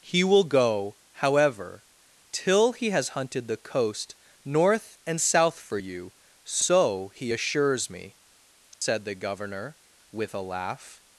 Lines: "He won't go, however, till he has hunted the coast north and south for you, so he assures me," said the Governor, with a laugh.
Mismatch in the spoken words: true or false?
true